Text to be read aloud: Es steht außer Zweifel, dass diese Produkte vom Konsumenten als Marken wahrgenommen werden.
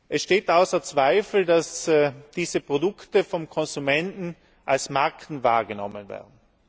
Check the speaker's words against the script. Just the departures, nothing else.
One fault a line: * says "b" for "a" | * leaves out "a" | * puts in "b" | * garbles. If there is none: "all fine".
all fine